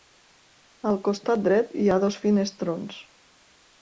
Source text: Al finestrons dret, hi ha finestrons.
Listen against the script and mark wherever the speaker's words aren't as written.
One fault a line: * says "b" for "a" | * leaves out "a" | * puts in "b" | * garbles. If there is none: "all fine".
* says "costat" for "finestrons"
* puts in "dos"